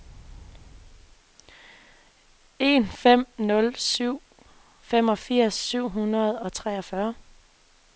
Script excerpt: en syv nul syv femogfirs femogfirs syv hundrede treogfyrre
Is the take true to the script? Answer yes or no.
no